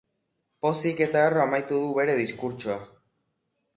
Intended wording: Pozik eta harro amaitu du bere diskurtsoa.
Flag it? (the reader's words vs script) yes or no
no